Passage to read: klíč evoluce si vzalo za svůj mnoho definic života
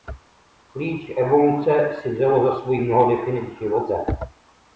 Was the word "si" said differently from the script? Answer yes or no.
no